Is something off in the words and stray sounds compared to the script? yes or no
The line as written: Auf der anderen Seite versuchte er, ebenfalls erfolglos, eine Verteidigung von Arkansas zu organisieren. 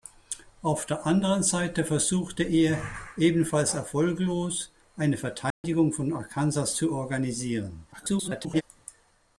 yes